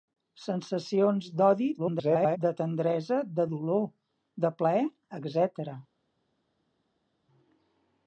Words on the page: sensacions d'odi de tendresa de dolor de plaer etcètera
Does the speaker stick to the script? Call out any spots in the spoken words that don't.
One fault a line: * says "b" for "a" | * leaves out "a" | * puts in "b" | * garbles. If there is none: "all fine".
* garbles